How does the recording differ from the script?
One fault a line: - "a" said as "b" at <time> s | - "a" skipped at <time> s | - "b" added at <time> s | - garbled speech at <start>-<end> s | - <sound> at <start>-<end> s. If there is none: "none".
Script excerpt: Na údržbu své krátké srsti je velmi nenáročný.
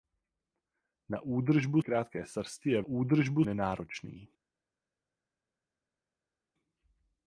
- "své" skipped at 1.8 s
- "velmi" said as "údržbu" at 2.8 s